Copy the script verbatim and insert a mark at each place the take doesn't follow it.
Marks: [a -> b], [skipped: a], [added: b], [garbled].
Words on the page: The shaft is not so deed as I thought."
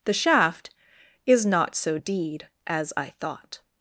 The shaft is not so deed as I thought."